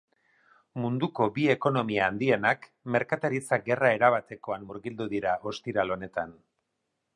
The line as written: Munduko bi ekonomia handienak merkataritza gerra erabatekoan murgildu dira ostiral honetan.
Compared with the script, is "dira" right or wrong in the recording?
right